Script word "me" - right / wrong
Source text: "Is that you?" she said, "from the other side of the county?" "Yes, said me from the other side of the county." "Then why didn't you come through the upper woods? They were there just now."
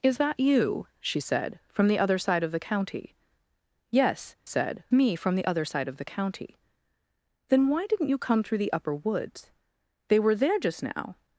right